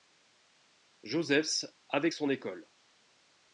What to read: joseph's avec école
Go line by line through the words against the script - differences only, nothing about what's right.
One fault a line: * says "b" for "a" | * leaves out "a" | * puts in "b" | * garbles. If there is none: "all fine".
* puts in "son"